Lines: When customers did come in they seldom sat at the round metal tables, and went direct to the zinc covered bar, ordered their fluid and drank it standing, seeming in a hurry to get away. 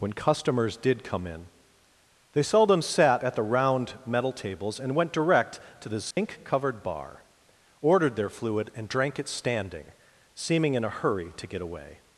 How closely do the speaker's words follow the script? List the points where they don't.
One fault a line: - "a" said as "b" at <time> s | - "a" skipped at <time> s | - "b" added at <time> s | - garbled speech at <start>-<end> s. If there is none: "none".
none